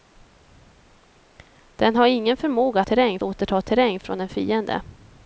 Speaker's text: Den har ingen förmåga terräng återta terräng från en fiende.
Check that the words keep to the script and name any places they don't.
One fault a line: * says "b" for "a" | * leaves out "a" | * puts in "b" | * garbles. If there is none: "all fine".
all fine